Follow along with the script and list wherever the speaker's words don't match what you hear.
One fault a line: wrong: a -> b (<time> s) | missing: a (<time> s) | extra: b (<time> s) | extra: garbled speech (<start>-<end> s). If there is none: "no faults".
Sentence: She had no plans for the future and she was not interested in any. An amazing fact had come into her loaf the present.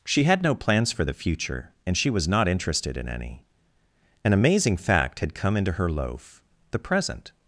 no faults